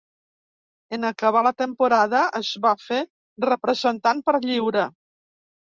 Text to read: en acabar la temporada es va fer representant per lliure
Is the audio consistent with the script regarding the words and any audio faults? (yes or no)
yes